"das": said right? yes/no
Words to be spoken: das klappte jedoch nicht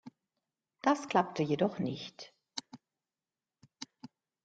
yes